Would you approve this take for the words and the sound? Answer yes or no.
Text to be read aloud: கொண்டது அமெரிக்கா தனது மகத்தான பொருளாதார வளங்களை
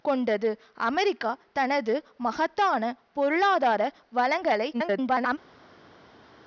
no